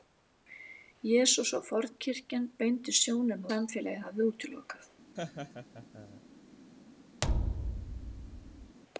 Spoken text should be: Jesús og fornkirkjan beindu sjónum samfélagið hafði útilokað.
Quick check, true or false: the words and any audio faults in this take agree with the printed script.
false